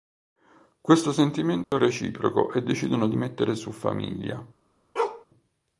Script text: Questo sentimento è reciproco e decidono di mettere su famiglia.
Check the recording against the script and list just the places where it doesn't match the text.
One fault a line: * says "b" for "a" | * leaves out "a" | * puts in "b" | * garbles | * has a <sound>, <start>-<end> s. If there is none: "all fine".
* has a dropout, 1.6-1.7 s
* has a bark, 5.0-5.3 s